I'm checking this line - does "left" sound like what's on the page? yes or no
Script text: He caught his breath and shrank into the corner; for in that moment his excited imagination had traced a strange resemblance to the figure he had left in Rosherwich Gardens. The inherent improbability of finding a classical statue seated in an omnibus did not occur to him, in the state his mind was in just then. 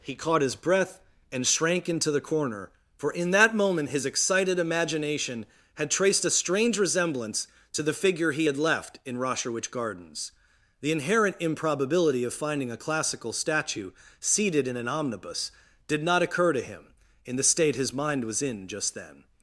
yes